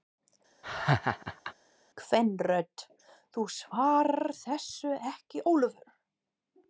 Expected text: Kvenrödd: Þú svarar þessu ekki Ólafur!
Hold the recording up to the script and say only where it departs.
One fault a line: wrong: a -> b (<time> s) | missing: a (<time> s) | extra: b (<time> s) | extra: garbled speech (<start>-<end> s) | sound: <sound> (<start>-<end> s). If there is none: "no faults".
sound: laugh (0.6-1.5 s)